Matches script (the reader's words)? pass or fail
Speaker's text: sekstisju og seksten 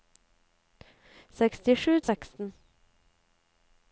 pass